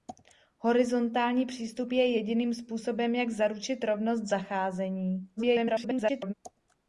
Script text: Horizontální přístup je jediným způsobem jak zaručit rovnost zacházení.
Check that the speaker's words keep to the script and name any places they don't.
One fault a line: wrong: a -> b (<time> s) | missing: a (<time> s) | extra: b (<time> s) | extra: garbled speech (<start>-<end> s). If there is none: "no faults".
extra: garbled speech (5.4-6.3 s)